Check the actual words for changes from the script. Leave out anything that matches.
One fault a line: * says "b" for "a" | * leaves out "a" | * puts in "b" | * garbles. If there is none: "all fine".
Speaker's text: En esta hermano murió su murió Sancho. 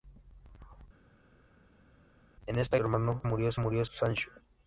all fine